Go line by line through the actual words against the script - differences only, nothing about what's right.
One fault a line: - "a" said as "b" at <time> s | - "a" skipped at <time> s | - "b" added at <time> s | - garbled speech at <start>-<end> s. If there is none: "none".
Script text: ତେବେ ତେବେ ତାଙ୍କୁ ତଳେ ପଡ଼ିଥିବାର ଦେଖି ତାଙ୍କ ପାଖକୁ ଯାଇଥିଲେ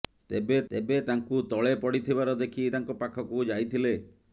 none